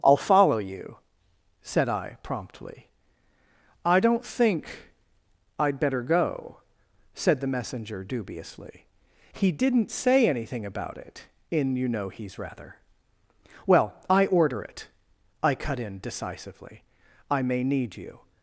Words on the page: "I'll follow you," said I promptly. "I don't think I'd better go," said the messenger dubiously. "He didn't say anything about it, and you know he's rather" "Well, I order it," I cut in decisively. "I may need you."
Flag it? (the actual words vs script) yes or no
yes